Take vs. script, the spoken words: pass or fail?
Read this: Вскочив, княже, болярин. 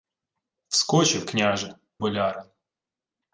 pass